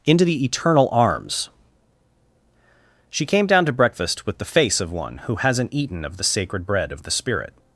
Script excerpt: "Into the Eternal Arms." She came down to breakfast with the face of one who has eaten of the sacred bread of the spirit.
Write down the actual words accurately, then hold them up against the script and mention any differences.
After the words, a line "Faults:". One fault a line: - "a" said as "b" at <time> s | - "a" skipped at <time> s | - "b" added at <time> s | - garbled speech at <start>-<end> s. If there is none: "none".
"Into the Eternal Arms." She came down to breakfast with the face of one who hasn't eaten of the sacred bread of the spirit.
Faults:
- "has" said as "hasn't" at 5.3 s